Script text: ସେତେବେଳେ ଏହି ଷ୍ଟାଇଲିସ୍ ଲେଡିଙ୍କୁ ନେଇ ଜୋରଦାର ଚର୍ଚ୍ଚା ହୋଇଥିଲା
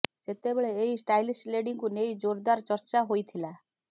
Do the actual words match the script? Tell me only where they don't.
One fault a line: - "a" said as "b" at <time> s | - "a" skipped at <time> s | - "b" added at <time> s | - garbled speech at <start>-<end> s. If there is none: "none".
none